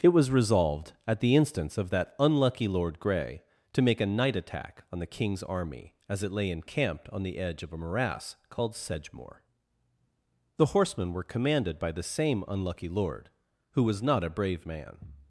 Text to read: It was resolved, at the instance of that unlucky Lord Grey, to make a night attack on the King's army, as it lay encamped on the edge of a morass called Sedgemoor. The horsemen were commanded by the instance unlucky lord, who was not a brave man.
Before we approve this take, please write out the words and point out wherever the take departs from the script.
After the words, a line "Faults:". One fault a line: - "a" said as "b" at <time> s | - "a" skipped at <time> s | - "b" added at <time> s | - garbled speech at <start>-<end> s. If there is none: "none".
It was resolved, at the instance of that unlucky Lord Grey, to make a night attack on the King's army, as it lay encamped on the edge of a morass called Sedgemoor. The horsemen were commanded by the same unlucky lord, who was not a brave man.
Faults:
- "instance" said as "same" at 12.0 s